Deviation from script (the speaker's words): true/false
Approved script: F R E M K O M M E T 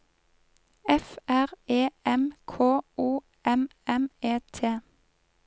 false